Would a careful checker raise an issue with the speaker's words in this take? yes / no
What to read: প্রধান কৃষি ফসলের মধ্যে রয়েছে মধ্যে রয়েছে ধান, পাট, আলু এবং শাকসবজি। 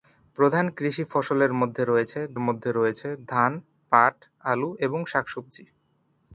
no